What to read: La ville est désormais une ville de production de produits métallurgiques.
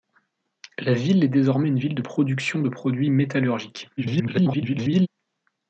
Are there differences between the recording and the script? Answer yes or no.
yes